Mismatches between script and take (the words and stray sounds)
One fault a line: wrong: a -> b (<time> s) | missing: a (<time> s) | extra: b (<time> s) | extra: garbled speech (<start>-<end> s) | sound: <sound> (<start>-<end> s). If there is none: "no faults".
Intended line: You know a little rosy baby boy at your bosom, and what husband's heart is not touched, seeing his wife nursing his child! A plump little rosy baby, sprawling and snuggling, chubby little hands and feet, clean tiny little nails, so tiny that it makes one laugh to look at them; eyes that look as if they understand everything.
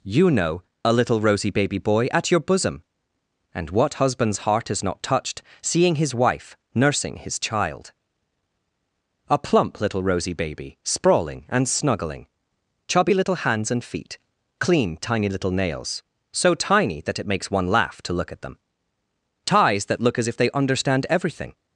wrong: eyes -> ties (19.4 s)